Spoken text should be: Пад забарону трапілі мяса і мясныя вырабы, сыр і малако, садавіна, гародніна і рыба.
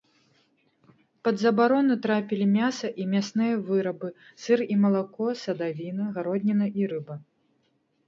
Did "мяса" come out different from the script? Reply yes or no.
no